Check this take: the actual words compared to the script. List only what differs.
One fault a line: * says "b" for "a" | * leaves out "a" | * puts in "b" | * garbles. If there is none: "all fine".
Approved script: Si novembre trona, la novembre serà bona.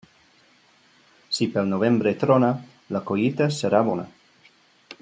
* puts in "pel"
* says "collita" for "novembre"